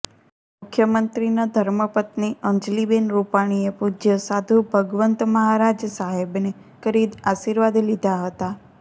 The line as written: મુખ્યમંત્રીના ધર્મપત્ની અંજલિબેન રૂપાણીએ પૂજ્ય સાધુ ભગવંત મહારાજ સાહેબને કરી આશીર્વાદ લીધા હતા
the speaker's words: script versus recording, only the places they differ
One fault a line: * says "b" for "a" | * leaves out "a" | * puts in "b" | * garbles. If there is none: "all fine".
all fine